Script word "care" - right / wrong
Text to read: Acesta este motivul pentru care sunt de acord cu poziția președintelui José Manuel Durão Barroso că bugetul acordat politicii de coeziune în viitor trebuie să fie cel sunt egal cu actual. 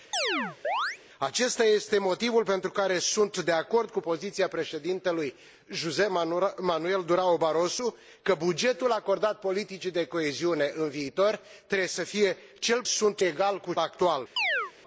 right